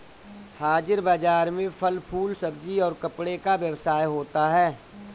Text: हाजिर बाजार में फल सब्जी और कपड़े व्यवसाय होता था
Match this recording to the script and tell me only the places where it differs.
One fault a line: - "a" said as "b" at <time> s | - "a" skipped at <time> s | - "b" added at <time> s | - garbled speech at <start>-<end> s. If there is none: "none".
- "फूल" added at 2.1 s
- "का" added at 3.4 s
- "था" said as "है" at 4.5 s